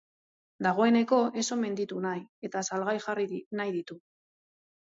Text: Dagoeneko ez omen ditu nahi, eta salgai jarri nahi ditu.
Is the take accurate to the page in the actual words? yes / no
yes